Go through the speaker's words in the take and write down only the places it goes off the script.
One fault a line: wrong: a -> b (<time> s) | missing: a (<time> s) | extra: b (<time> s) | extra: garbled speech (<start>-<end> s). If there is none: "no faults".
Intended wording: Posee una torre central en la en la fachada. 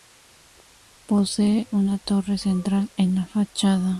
missing: en la (3.2 s)